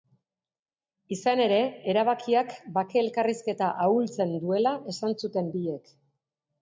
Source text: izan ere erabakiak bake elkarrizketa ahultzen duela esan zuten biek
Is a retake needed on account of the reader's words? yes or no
no